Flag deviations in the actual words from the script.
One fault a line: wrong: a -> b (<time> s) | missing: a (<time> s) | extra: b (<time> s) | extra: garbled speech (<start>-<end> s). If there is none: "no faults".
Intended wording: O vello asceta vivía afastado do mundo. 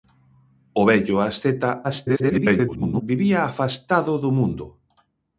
extra: garbled speech (1.8-3.0 s)